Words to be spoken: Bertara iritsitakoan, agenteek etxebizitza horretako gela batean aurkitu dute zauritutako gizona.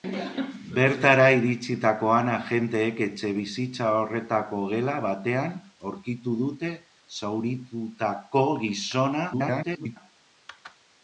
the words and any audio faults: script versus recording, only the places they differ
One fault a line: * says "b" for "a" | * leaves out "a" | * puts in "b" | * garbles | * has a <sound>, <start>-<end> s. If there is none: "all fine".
* garbles